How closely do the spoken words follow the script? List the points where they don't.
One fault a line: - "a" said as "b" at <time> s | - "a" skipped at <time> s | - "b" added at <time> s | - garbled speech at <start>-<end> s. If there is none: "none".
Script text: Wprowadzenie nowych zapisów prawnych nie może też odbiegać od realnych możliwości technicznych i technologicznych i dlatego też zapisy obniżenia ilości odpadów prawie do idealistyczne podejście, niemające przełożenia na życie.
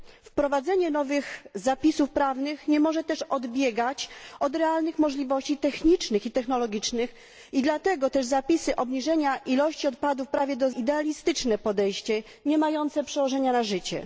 none